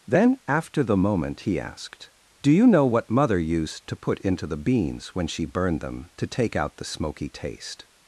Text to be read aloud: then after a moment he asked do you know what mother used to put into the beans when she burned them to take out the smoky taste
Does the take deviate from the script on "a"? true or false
true